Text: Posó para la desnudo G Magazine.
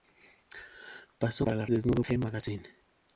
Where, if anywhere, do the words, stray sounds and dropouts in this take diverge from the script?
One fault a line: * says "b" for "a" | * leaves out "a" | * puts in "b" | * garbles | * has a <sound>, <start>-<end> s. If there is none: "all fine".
all fine